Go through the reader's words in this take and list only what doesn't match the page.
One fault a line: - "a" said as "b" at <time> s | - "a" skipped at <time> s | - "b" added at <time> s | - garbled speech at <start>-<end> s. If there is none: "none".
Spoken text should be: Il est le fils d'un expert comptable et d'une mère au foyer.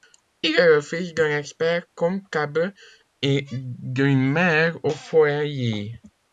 none